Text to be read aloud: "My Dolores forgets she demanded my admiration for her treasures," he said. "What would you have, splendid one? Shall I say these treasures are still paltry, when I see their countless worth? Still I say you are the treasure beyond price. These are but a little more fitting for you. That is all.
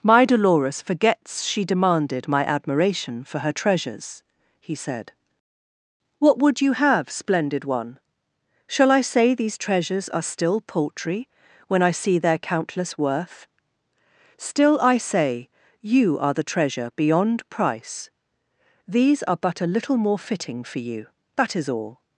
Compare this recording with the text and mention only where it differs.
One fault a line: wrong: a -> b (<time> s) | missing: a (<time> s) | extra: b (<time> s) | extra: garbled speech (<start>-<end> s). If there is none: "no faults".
no faults